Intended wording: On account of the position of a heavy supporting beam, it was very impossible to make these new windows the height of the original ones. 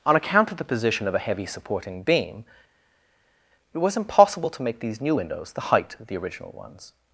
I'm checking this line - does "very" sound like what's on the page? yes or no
no